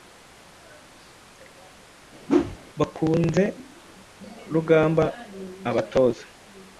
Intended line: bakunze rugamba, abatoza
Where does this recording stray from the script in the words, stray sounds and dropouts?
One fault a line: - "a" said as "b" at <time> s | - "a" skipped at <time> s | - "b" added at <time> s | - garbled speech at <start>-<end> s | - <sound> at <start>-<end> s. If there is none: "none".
- whoosh at 2.3-2.6 s